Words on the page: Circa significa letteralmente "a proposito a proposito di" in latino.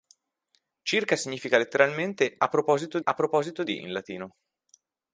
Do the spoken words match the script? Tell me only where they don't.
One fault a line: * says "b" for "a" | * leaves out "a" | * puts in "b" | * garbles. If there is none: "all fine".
all fine